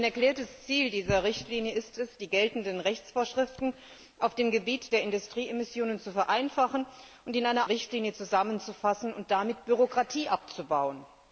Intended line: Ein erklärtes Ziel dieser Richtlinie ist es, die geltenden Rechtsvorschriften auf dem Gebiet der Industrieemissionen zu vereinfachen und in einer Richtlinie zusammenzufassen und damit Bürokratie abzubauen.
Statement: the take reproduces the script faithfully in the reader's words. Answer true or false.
true